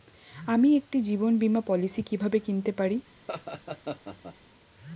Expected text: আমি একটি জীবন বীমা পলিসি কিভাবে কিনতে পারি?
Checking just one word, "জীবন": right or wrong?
right